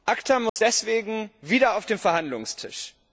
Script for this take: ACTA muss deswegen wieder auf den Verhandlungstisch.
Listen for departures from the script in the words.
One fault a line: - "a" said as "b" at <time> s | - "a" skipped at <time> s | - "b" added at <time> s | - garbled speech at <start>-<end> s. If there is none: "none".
none